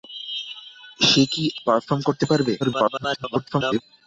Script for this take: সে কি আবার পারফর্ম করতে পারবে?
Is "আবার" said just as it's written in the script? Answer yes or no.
no